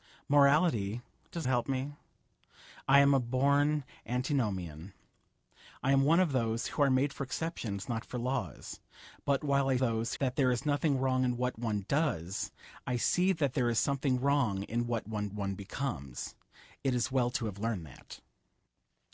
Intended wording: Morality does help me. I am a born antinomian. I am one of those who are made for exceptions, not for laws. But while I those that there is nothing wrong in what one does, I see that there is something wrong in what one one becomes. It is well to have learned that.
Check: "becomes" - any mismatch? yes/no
no